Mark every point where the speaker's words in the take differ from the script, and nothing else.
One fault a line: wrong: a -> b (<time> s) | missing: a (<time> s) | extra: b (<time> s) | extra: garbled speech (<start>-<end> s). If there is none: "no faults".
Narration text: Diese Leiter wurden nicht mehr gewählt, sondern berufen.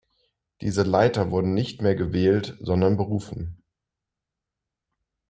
no faults